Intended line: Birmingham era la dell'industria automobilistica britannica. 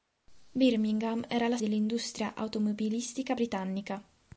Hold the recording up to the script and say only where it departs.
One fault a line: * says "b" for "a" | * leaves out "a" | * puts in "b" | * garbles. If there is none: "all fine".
all fine